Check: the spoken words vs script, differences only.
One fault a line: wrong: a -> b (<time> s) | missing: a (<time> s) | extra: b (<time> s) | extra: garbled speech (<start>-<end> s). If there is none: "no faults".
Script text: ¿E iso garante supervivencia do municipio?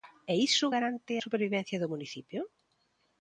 no faults